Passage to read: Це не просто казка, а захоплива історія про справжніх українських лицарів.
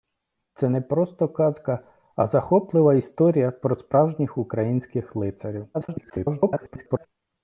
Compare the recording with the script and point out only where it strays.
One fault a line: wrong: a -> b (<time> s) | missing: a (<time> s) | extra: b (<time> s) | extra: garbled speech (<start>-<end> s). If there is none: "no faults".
extra: garbled speech (5.7-7.1 s)